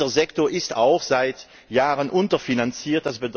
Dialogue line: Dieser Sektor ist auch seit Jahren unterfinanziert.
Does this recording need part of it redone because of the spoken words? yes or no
no